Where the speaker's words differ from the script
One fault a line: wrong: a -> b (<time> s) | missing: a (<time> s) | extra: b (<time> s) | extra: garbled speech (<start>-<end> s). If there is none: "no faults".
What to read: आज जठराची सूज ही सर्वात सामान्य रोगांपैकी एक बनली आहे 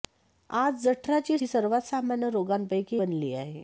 missing: सूज (1.4 s)
missing: एक (3.0 s)